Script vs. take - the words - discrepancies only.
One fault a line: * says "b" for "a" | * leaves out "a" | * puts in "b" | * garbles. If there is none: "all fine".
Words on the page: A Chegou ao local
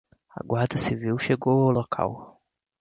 * puts in "Guarda Civil"